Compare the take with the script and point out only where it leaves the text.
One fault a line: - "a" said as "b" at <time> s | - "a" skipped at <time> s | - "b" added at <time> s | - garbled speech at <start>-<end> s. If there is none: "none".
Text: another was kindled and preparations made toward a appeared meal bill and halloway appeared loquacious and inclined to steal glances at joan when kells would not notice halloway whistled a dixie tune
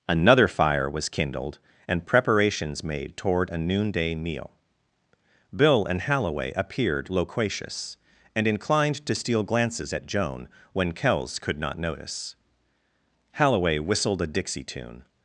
- "fire" added at 0.5 s
- "appeared" said as "noonday" at 3.6 s
- "would" said as "could" at 11.4 s